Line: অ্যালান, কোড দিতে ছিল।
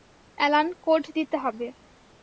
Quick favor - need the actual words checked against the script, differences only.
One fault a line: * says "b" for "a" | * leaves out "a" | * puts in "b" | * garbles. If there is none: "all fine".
* says "হবে" for "ছিল"